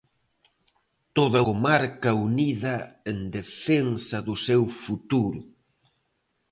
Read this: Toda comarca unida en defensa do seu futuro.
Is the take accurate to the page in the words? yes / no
yes